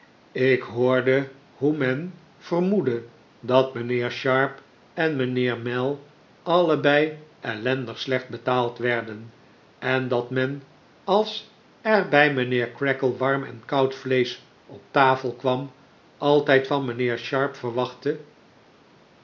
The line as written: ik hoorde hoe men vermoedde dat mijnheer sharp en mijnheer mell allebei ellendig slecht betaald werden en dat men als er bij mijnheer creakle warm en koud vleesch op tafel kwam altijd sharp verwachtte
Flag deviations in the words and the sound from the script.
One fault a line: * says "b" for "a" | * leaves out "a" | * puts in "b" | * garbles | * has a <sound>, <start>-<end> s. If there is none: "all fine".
* puts in "van mijnheer"